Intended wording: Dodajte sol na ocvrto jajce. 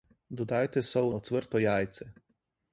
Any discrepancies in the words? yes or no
yes